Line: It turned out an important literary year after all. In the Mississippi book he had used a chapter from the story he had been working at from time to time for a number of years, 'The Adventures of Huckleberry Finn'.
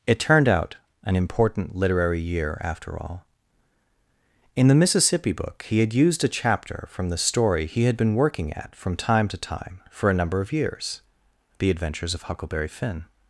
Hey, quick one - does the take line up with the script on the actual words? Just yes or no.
yes